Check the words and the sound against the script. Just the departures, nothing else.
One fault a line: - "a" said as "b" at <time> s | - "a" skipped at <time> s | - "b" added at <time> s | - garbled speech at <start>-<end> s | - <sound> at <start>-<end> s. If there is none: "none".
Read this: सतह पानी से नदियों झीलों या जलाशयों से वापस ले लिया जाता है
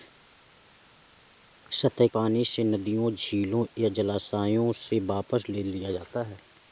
none